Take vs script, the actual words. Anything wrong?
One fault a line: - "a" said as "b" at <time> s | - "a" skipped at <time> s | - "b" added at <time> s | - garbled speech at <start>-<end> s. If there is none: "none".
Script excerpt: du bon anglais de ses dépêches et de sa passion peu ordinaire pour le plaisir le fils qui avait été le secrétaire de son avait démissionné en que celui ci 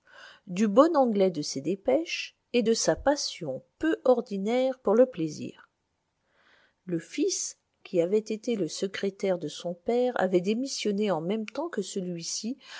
- "père" added at 9.7 s
- "même temps" added at 11.2 s